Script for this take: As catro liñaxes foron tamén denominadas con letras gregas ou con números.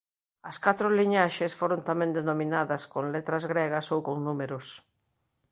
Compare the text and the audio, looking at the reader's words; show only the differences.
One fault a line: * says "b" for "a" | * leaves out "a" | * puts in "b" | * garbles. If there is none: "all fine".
all fine